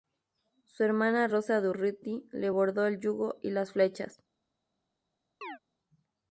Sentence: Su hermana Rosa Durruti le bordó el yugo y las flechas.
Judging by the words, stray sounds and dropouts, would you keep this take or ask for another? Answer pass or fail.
fail